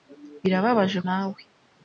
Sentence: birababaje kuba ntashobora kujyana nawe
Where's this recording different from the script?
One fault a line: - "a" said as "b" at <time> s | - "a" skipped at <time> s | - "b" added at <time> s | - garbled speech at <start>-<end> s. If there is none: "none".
- "kuba ntashobora kujyana" skipped at 1.0 s